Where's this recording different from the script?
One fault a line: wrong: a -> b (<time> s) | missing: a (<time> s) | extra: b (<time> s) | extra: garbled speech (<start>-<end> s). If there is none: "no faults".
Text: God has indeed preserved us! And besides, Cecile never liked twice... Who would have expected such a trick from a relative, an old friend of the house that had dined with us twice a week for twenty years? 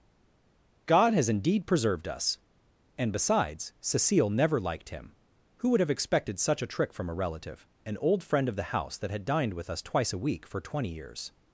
wrong: twice -> him (4.9 s)